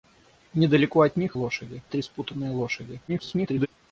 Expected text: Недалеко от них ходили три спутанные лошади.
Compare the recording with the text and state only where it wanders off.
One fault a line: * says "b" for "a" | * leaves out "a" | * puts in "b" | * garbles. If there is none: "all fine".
* says "лошади" for "ходили"
* garbles